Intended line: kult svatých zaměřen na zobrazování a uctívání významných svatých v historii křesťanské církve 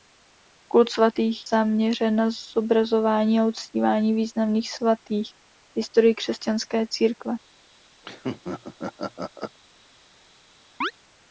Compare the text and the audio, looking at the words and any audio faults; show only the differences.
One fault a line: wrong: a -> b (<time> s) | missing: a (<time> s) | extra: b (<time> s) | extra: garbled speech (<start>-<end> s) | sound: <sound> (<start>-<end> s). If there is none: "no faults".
sound: laugh (8.0-9.6 s)
sound: chirp (10.8-10.9 s)